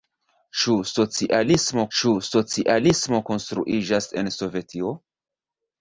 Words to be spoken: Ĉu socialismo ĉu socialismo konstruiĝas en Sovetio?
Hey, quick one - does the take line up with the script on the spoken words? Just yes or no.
yes